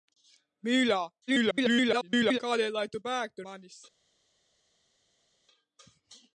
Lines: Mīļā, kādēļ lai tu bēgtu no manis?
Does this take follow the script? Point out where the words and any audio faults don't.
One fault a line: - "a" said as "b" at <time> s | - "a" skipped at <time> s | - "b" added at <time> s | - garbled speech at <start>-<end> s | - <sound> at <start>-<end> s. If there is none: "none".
- garbled speech at 1.3-2.4 s
- "no" skipped at 3.5 s